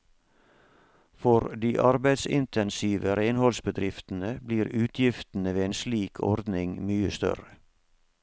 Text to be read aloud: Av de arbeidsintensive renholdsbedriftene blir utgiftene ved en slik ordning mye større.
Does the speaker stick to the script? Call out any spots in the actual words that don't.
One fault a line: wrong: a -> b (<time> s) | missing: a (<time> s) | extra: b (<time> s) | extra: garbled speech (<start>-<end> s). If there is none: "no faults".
wrong: Av -> For (1.2 s)